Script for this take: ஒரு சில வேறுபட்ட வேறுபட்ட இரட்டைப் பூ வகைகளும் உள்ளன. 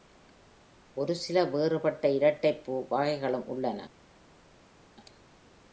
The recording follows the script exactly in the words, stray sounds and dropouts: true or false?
false